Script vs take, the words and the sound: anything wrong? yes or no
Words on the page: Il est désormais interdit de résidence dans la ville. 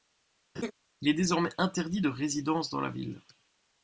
yes